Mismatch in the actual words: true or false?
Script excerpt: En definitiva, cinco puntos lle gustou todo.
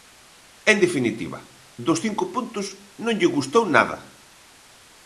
true